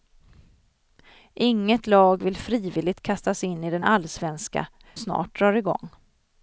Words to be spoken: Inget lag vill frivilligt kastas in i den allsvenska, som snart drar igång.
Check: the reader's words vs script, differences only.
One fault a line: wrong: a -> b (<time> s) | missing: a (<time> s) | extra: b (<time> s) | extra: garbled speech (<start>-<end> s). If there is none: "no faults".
missing: som (4.7 s)